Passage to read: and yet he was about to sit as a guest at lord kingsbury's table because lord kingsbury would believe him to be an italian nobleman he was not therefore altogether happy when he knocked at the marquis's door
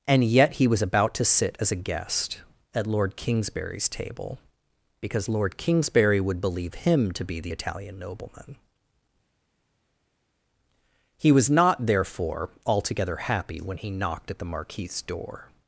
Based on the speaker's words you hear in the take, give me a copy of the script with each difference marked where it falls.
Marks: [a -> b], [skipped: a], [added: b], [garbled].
and yet he was about to sit as a guest at lord kingsbury's table because lord kingsbury would believe him to be [an -> the] italian nobleman he was not therefore altogether happy when he knocked at the marquis's door